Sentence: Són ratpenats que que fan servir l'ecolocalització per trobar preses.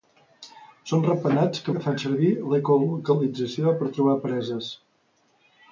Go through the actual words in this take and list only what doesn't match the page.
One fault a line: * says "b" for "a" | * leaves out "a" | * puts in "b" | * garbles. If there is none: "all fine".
all fine